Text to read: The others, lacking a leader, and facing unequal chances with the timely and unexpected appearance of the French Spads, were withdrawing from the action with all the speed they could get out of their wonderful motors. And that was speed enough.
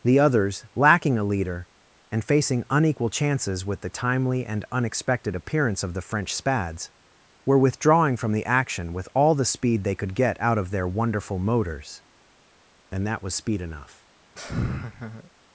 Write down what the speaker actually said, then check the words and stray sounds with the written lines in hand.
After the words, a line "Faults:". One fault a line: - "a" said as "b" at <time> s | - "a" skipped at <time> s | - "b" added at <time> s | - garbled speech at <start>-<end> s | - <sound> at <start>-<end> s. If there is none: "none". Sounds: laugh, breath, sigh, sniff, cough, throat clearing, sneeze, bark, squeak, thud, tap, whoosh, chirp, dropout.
The others, lacking a leader, and facing unequal chances with the timely and unexpected appearance of the French Spads, were withdrawing from the action with all the speed they could get out of their wonderful motors. And that was speed enough.
Faults:
- laugh at 14.4-15.3 s